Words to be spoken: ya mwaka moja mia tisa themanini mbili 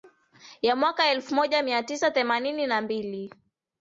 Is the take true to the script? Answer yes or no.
no